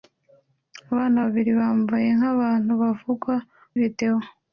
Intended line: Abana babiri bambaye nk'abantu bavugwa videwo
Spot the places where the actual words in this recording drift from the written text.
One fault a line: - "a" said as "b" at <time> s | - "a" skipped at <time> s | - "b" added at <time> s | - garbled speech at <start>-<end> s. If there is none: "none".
none